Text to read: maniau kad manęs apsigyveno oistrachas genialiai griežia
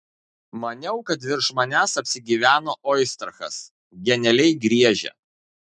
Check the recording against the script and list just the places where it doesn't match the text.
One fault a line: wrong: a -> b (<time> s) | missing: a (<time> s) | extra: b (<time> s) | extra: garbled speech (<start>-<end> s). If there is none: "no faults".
extra: virš (1.3 s)